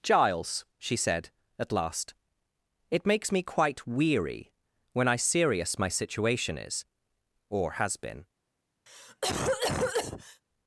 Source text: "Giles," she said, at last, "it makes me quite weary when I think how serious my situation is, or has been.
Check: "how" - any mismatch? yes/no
yes